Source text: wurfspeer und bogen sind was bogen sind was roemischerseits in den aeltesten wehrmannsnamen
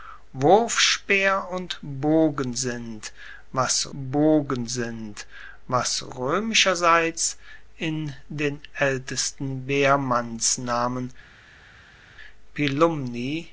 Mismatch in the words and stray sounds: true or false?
false